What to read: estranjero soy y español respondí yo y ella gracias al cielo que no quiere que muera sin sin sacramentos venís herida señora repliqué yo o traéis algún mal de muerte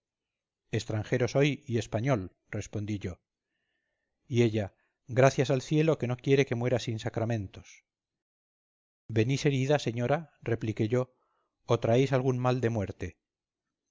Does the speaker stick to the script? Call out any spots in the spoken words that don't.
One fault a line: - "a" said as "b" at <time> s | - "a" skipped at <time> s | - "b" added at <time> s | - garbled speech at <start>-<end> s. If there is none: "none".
- "sin" skipped at 7.0 s